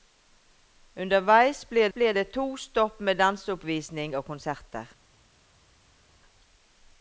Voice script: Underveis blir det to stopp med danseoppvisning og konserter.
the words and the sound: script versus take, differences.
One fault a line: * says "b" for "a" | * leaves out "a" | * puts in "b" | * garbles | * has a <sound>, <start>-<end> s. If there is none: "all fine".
* puts in "blir"